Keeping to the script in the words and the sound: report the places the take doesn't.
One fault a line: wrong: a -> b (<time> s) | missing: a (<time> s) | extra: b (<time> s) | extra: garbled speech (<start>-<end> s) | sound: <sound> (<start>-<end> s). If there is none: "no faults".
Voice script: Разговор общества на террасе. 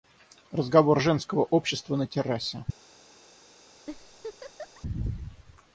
extra: женского (1.0 s)
sound: laugh (3.9-4.8 s)